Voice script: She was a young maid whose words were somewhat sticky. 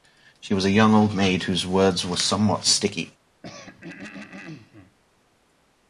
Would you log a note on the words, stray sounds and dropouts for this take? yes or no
yes